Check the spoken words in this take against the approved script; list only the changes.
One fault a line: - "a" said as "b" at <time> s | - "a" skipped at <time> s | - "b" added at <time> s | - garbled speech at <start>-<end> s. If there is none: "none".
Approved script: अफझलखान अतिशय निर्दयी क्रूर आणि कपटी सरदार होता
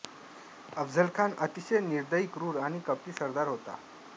none